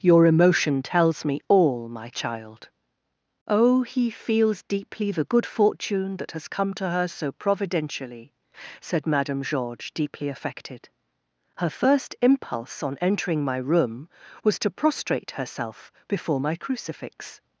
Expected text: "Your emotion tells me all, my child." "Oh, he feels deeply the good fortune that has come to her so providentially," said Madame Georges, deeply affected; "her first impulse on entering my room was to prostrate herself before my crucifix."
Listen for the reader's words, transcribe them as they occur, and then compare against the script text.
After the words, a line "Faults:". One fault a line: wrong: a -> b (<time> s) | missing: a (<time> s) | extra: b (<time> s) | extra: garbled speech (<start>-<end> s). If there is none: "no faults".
"Your emotion tells me all, my child." "Oh, he feels deeply the good fortune that has come to her so providentially," said Madame Georges, deeply affected; "her first impulse on entering my room was to prostrate herself before my crucifix."
Faults:
no faults